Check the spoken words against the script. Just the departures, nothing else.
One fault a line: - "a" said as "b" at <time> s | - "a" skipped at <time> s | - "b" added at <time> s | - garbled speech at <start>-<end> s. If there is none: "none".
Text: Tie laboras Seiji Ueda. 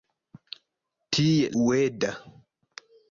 - "laboras Seiji" skipped at 1.5 s